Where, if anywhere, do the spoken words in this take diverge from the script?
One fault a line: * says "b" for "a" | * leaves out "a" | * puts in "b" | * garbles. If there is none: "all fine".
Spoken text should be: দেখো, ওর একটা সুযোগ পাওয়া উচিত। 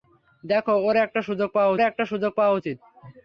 * puts in "একটা সুযোগ পাওয়া"